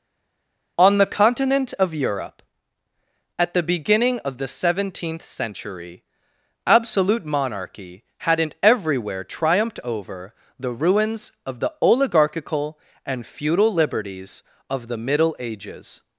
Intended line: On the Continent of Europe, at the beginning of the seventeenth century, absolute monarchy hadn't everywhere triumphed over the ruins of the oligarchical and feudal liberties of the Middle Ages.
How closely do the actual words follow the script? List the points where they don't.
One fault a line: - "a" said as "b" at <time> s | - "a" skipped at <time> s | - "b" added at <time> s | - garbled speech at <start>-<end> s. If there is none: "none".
none